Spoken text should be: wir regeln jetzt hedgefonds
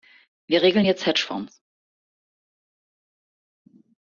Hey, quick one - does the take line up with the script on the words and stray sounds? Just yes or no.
yes